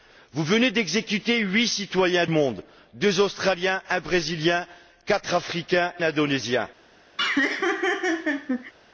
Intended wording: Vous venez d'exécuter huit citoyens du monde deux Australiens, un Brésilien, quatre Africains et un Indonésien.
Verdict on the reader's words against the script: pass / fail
fail